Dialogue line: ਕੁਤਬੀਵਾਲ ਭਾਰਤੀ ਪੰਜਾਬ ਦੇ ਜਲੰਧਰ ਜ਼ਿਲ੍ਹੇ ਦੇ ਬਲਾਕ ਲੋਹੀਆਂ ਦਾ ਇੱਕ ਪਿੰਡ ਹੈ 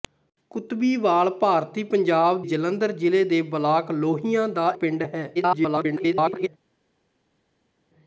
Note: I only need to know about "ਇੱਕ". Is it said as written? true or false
false